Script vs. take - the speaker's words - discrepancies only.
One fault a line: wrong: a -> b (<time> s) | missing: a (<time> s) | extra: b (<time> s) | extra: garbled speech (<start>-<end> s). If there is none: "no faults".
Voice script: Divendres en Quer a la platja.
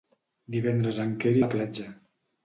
no faults